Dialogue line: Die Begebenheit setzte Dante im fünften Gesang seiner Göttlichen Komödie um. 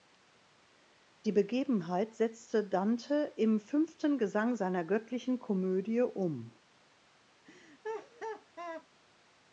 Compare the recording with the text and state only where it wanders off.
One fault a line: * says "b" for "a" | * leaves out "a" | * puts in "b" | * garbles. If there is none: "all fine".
all fine